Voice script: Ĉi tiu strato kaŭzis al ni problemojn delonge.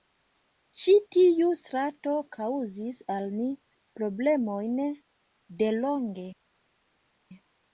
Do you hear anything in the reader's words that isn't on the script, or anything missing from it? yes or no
no